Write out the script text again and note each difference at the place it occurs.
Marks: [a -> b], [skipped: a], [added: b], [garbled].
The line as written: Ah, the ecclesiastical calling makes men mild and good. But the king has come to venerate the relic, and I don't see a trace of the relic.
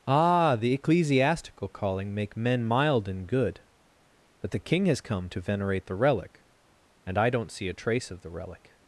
Ah, the ecclesiastical calling [makes -> make] men mild and good. But the king has come to venerate the relic, and I don't see a trace of the relic.